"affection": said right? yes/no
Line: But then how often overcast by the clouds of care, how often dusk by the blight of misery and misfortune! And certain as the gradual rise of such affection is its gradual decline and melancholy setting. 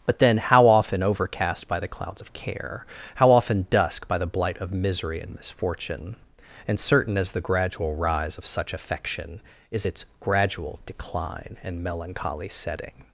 yes